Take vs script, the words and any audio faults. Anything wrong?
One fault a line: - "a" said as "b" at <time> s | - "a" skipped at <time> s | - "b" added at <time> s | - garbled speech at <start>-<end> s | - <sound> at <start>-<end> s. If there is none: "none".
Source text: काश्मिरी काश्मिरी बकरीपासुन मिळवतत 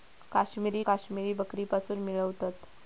none